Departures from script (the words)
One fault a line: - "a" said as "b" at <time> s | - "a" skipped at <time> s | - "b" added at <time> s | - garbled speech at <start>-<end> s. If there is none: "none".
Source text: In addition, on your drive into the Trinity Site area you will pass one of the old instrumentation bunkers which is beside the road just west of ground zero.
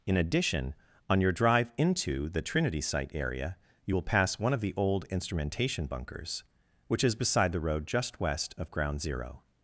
none